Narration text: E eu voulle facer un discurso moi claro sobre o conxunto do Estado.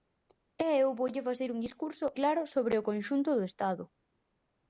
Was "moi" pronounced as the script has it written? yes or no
no